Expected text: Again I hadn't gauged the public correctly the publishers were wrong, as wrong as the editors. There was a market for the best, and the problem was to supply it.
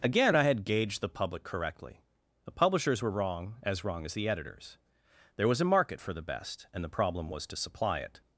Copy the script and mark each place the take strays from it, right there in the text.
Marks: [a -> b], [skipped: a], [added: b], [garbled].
Again I [hadn't -> had] gauged the public correctly the publishers were wrong, as wrong as the editors. There was a market for the best, and the problem was to supply it.